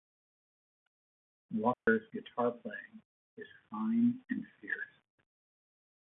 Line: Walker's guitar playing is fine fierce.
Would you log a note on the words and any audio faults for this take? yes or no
yes